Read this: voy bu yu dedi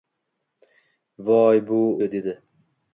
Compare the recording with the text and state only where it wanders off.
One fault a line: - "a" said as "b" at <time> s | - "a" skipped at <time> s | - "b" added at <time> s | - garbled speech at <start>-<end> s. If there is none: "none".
none